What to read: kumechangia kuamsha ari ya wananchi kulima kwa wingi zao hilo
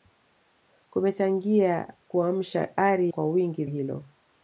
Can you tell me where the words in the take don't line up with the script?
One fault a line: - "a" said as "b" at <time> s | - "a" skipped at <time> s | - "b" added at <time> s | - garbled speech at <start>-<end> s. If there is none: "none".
- "ya wananchi kulima" skipped at 3.1 s
- "zao" skipped at 3.6 s